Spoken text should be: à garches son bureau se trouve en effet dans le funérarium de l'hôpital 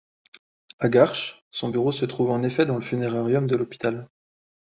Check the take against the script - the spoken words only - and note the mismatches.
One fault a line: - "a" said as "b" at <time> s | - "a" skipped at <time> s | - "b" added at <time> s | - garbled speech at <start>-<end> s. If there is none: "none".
none